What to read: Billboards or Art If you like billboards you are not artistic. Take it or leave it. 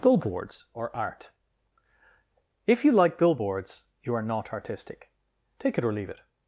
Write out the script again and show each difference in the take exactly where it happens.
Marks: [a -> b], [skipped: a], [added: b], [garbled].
Billboards or Art If you like billboards you are not artistic. Take it or leave it.